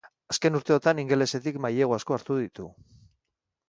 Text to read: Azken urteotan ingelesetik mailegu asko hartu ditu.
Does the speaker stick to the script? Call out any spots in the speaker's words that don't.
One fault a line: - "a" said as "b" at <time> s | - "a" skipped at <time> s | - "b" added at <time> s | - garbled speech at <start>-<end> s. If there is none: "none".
none